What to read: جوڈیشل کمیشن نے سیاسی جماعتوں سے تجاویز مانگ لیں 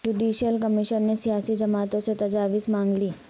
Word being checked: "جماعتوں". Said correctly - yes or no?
yes